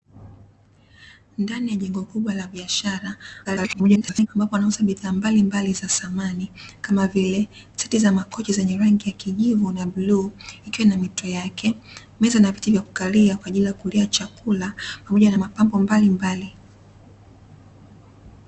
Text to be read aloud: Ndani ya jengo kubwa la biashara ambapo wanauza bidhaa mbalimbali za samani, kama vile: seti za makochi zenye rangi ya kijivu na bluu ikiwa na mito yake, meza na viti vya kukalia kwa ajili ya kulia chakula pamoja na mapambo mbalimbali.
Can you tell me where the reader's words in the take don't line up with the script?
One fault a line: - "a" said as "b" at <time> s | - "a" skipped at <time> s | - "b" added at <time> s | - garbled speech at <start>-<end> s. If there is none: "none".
- garbled speech at 3.4-4.3 s